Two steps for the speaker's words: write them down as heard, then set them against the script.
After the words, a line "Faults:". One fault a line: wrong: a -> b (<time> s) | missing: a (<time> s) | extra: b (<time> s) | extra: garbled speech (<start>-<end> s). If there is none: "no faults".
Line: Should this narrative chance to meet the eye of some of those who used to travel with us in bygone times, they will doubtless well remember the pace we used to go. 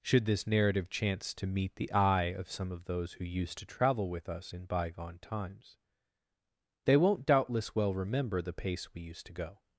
Should this narrative chance to meet the eye of some of those who used to travel with us in bygone times, they won't doubtless well remember the pace we used to go.
Faults:
wrong: will -> won't (7.0 s)